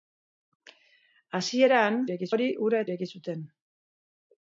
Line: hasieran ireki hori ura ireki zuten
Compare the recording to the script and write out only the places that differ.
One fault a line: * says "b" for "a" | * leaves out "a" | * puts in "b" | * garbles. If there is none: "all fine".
all fine